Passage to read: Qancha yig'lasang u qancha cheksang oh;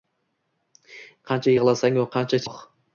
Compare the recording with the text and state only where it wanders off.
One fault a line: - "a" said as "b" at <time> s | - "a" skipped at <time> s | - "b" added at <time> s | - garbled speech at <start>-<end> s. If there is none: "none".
- "cheksang" skipped at 2.4 s